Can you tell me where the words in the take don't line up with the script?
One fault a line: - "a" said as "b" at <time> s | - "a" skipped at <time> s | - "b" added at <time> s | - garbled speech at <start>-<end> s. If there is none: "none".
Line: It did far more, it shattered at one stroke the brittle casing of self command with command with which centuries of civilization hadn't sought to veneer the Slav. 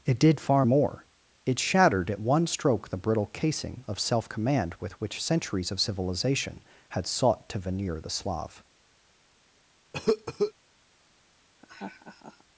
- "command with" skipped at 5.0 s
- "hadn't" said as "had" at 6.9 s